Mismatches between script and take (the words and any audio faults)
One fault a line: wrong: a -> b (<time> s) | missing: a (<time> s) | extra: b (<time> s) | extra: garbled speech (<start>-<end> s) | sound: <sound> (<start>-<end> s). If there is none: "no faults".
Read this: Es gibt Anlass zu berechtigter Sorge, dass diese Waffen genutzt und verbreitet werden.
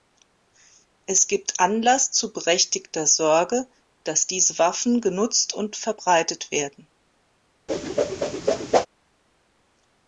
sound: whoosh (7.7-8.9 s)